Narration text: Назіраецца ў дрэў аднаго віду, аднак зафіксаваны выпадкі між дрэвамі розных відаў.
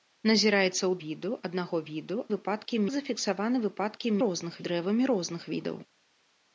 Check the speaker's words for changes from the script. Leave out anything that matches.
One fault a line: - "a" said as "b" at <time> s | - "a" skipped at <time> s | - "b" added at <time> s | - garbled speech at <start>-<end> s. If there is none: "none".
- "дрэў" said as "віду" at 1.0 s
- "аднак" said as "выпадкі" at 2.3 s
- "між" said as "розных" at 4.3 s